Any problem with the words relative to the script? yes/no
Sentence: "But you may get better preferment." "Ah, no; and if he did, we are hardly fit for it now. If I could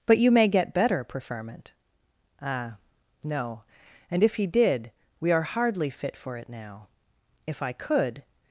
no